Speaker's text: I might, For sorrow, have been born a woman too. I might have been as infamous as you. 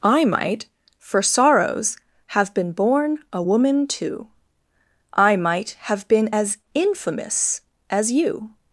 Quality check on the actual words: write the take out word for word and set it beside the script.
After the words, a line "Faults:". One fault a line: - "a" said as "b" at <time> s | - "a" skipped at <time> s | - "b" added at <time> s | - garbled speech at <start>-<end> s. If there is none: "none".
I might, For sorrows, have been born a woman too. I might have been as infamous as you.
Faults:
- "sorrow" said as "sorrows" at 1.2 s